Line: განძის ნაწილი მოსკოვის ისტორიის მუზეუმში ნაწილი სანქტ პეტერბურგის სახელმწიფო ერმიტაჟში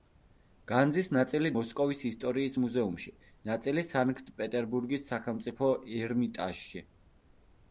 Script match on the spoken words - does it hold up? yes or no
yes